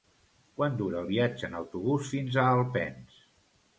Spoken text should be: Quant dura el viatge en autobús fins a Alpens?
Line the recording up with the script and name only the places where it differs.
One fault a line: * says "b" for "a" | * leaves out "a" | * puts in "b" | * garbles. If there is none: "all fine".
all fine